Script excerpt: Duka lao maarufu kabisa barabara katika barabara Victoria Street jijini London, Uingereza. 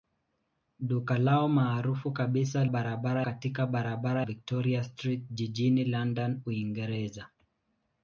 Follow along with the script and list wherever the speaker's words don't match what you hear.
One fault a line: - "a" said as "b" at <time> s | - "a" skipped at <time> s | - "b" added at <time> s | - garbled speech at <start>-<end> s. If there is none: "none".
none